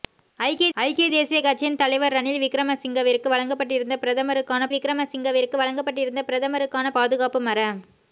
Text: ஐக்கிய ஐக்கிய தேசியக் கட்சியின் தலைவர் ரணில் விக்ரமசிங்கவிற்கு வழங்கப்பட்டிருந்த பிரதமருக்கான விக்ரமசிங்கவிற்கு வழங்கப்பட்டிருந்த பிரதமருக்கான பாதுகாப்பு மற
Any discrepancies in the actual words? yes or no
no